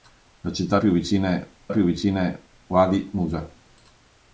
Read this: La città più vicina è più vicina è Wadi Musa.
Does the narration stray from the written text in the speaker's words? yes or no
no